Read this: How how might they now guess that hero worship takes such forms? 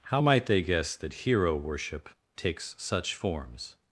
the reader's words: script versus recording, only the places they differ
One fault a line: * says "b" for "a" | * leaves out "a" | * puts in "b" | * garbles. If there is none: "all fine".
* leaves out "how"
* leaves out "now"